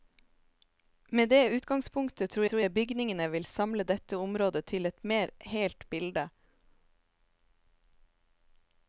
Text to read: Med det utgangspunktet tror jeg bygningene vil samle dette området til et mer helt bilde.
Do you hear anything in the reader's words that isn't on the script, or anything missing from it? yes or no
yes